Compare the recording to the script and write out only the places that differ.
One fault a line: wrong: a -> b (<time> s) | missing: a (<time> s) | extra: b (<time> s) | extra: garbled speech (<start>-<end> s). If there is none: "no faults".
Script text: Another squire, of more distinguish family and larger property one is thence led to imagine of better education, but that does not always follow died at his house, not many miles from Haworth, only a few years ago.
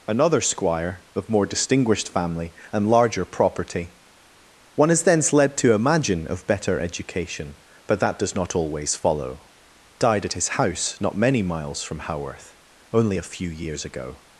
wrong: distinguish -> distinguished (1.4 s)